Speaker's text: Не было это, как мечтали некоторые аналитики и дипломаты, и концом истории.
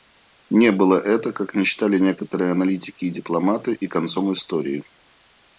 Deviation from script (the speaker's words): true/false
false